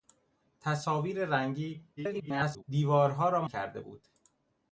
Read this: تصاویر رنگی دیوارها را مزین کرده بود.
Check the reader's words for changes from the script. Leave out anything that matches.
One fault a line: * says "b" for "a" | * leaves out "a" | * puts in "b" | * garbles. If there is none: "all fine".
* garbles
* leaves out "مزین"